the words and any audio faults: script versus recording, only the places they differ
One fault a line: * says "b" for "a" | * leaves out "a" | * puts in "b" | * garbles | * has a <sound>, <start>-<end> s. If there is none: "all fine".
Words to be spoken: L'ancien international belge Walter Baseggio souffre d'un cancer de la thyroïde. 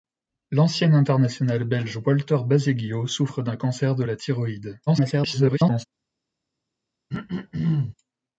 * garbles
* has a throat clearing, 7.1-8.0 s